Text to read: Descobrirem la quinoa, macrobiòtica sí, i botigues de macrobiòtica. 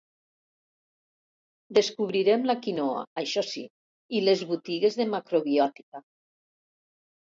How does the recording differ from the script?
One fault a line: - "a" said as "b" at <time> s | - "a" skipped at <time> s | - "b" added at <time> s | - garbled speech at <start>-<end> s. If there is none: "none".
- "macrobiòtica" said as "això" at 3.2 s
- "les" added at 4.3 s